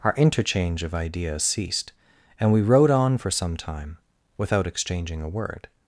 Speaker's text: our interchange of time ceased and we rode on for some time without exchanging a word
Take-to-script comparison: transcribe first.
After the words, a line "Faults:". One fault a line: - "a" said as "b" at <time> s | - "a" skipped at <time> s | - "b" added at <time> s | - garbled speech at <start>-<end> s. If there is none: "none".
our interchange of ideas ceased and we rode on for some time without exchanging a word
Faults:
- "time" said as "ideas" at 0.9 s